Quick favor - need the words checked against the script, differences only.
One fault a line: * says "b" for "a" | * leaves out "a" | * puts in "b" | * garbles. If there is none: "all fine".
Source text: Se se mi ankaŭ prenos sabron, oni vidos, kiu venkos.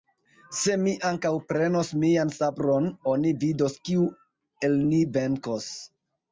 * leaves out "se"
* puts in "mian"
* puts in "el ni"